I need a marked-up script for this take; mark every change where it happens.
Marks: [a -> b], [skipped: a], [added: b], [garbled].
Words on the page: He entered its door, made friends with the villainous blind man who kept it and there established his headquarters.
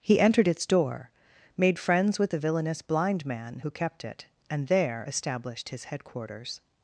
He entered its door, made friends with the villainous blind man who kept it and there established his headquarters.